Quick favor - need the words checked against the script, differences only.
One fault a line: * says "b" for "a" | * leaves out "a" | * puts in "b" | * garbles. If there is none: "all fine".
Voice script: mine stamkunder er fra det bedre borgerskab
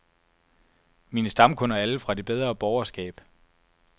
* puts in "alle"